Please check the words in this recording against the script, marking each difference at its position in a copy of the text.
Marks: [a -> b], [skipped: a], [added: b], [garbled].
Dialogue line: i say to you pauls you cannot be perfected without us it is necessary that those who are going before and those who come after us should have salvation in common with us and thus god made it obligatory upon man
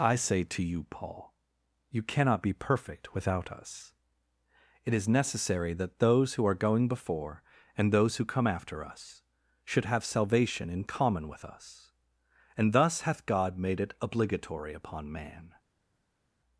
i say to you [pauls -> paul] you cannot be [perfected -> perfect] without us it is necessary that those who are going before and those who come after us should have salvation in common with us and thus [added: hath] god made it obligatory upon man